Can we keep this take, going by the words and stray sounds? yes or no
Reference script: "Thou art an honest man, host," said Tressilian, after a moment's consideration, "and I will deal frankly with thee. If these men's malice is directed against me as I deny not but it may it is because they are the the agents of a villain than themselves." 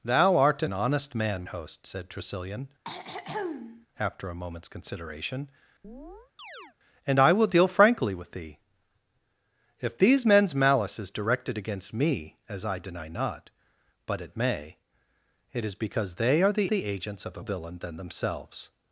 no